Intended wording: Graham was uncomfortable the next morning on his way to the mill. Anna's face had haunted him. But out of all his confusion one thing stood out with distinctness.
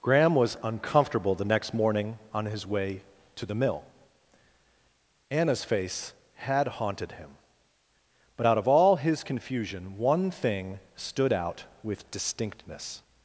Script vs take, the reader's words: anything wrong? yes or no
no